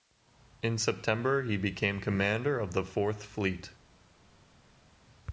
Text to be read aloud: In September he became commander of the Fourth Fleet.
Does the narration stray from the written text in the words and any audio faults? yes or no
no